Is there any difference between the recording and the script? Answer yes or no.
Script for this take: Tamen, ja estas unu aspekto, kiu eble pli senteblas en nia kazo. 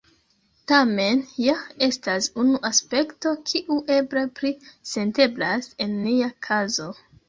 no